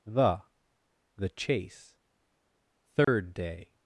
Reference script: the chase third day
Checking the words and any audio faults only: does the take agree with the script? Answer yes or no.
no